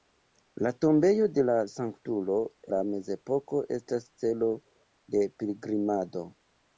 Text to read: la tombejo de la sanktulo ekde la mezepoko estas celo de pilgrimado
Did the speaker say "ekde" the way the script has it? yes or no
no